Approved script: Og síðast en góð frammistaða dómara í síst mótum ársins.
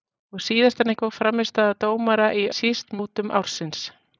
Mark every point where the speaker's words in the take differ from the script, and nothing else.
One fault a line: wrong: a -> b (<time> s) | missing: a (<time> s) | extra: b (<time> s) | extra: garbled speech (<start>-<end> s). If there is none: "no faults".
no faults